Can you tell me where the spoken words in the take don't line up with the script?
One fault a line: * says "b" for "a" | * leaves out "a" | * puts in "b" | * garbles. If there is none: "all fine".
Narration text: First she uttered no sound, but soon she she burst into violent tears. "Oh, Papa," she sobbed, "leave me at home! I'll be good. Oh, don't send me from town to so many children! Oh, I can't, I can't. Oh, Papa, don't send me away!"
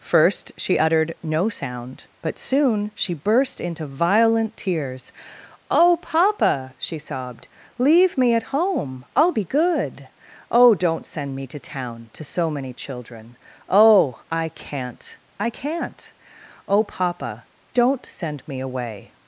* leaves out "she"
* says "to" for "from"